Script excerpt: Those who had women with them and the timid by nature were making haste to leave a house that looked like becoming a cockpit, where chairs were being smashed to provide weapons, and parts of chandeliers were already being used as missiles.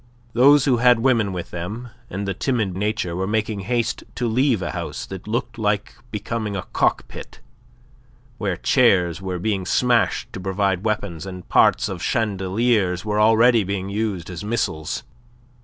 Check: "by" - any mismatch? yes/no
yes